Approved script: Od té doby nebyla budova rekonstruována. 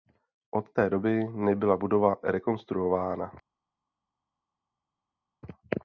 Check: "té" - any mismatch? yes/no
no